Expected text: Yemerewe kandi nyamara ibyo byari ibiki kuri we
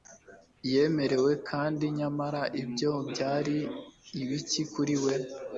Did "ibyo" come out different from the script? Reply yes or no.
no